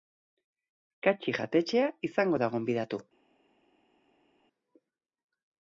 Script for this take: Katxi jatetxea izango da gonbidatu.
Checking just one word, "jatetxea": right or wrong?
right